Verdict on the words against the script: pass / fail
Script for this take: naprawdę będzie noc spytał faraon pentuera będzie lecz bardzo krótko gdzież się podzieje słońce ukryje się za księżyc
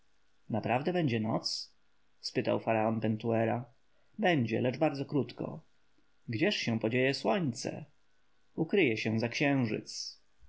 pass